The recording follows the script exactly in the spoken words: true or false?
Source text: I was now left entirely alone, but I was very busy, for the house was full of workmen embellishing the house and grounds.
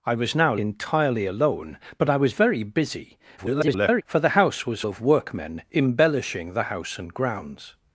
false